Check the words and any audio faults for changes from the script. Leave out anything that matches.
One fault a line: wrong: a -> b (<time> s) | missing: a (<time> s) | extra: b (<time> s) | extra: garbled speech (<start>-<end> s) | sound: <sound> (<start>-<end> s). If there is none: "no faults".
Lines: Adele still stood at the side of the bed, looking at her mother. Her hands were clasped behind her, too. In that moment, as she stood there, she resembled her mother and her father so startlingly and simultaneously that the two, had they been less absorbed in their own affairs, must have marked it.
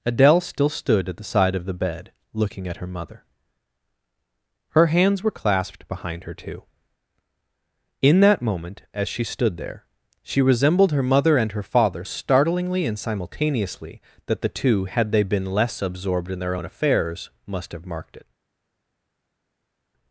missing: so (12.0 s)